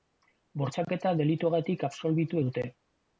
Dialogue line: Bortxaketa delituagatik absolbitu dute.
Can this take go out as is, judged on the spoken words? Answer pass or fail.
pass